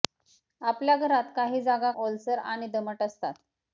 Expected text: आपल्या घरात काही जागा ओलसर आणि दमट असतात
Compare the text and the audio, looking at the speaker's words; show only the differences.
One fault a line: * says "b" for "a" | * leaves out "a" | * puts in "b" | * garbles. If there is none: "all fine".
all fine